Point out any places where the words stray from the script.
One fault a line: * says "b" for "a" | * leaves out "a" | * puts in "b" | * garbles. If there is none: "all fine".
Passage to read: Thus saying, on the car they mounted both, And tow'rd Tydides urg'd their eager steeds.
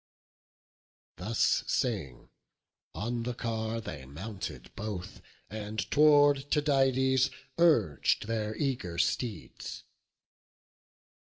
all fine